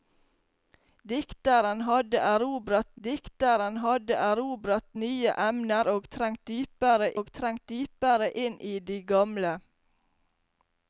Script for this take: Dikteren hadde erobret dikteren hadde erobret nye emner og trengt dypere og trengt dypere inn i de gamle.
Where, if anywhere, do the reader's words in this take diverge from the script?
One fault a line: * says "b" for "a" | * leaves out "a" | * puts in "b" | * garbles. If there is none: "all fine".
all fine